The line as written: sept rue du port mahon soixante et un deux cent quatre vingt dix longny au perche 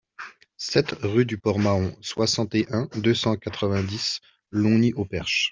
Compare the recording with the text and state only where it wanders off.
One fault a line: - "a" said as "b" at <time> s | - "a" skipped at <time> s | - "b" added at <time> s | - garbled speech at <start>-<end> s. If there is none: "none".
none